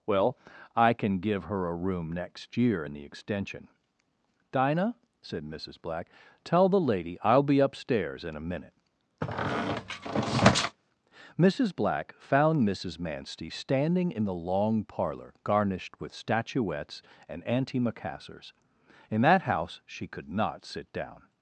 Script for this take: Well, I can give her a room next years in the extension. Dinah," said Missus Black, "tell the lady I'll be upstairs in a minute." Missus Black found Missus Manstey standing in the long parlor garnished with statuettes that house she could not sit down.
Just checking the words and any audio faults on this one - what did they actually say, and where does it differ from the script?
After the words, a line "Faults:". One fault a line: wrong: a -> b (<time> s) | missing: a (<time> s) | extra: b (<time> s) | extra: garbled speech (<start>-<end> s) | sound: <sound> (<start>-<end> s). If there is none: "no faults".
Well, I can give her a room next year in the extension. Dinah," said Missus Black, "tell the lady I'll be upstairs in a minute." Missus Black found Missus Manstey standing in the long parlor garnished with statuettes and antimacassars; in that house she could not sit down.
Faults:
wrong: years -> year (2.6 s)
sound: squeak (9.2-10.8 s)
extra: and antimacassars in (17.3 s)